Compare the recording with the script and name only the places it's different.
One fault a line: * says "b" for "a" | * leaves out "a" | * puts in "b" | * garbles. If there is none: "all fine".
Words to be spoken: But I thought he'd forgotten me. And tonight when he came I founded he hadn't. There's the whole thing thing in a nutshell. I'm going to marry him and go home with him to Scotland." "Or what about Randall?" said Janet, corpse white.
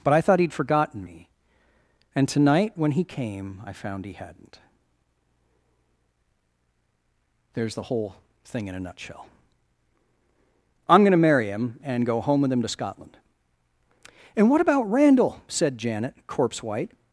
* says "found" for "founded"
* leaves out "thing"
* says "And" for "Or"